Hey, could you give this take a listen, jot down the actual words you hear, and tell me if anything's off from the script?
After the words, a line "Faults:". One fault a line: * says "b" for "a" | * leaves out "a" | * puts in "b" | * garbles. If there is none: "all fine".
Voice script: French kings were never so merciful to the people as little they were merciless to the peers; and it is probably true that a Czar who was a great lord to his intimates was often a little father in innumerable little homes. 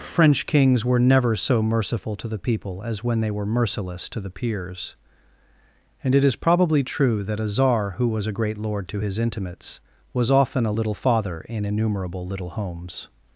French kings were never so merciful to the people as when they were merciless to the peers; and it is probably true that a Czar who was a great lord to his intimates was often a little father in innumerable little homes.
Faults:
* says "when" for "little"